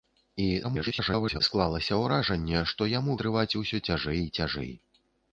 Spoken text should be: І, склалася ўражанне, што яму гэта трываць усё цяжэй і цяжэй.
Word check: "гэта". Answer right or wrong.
wrong